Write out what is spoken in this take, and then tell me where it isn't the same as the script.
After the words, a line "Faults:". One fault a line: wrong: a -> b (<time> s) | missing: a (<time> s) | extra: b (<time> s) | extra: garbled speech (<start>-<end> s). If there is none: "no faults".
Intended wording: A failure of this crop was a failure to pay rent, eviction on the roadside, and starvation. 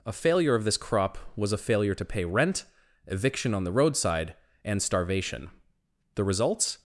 A failure of this crop was a failure to pay rent, eviction on the roadside, and starvation. The results
Faults:
extra: The results (6.2 s)